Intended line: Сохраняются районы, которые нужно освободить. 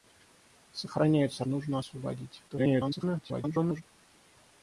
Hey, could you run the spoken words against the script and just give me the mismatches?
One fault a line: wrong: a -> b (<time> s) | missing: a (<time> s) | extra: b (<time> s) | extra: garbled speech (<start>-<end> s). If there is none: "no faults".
missing: районы которые (1.4 s)
extra: garbled speech (2.5-3.8 s)